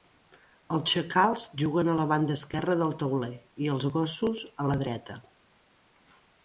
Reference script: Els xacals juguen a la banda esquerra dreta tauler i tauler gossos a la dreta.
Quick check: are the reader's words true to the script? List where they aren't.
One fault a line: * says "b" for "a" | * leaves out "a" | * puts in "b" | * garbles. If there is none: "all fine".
* says "del" for "dreta"
* says "els" for "tauler"